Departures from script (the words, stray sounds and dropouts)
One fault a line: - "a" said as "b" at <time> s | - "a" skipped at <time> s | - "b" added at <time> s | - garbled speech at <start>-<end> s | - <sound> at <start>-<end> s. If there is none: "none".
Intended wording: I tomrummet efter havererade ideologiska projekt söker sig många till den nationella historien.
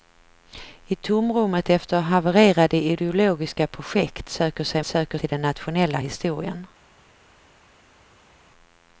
- "många" said as "söker" at 4.8 s